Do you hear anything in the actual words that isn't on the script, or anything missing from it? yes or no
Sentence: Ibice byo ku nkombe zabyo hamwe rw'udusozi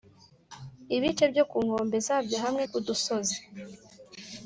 no